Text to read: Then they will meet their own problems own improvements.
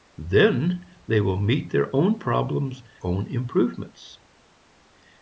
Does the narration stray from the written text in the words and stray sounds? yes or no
no